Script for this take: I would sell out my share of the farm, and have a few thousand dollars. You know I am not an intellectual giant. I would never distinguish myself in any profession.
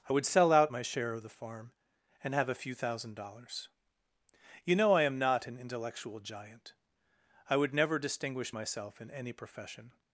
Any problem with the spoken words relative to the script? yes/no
no